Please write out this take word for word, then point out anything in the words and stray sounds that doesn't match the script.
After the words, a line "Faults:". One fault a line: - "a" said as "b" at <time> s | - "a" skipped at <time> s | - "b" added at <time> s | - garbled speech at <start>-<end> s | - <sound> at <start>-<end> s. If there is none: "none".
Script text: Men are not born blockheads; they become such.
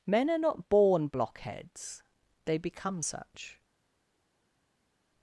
Men are not born blockheads; they become such.
Faults:
none